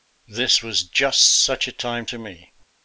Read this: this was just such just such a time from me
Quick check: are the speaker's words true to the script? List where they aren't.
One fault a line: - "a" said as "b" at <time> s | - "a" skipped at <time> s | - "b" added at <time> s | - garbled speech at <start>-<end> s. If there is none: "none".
- "just such" skipped at 1.7 s
- "from" said as "to" at 2.0 s